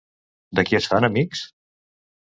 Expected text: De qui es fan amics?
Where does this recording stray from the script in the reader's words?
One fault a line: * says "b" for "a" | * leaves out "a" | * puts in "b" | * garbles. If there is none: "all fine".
all fine